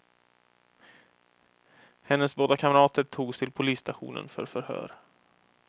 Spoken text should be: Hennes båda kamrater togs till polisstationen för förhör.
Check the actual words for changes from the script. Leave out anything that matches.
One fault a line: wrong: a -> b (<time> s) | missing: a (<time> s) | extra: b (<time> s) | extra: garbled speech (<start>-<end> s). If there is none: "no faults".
no faults